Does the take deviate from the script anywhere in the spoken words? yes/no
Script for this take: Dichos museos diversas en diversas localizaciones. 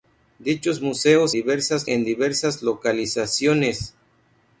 no